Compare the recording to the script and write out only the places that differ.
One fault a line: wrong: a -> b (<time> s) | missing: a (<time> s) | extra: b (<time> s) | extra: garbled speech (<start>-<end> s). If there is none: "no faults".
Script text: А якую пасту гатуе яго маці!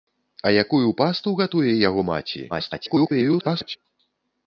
extra: garbled speech (2.5-3.8 s)